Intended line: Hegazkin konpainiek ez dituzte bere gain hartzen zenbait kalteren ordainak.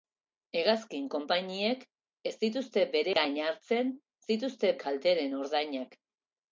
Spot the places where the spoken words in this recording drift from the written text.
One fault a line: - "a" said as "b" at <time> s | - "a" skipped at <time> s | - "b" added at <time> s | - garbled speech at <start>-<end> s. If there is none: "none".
- "zenbait" said as "dituzte" at 4.3 s